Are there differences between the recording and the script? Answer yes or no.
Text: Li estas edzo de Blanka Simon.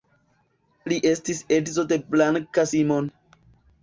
yes